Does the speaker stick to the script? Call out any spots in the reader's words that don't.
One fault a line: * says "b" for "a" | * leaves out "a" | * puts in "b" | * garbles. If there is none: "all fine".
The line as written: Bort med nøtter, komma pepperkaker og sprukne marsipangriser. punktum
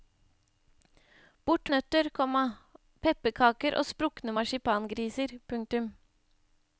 * leaves out "med"